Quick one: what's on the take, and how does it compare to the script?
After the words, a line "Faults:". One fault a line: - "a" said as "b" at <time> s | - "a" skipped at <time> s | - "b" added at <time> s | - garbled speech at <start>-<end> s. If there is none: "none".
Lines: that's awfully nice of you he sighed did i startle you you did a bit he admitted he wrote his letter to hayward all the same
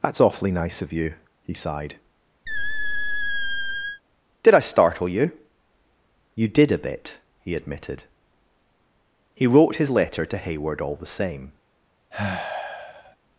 that's awfully nice of you he sighed did i startle you you did a bit he admitted he wrote his letter to hayward all the same
Faults:
none